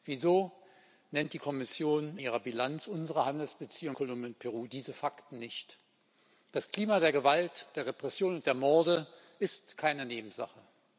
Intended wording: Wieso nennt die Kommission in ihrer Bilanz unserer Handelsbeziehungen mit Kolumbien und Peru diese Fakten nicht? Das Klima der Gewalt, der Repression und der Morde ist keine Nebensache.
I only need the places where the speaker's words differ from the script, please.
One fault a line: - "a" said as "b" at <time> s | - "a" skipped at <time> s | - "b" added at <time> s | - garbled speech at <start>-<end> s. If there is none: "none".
- "in" skipped at 2.2 s
- "mit" skipped at 4.0 s